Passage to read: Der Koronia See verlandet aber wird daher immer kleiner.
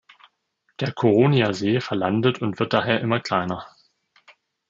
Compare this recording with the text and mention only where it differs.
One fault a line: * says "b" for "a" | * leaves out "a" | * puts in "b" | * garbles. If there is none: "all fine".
* says "und" for "aber"